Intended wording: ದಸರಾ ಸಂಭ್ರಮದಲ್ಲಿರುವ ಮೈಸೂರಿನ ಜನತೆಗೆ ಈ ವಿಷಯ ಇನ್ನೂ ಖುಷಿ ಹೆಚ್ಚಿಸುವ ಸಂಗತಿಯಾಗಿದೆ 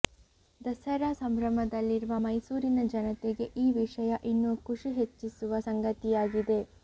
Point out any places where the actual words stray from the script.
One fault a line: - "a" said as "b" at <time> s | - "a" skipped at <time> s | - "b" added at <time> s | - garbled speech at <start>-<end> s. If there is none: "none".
none